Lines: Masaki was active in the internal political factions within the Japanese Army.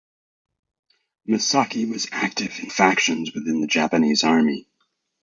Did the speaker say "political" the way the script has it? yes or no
no